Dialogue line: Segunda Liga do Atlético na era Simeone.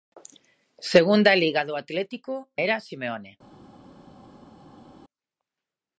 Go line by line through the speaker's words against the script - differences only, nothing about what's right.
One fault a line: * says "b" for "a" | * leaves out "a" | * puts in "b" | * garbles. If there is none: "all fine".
* leaves out "na"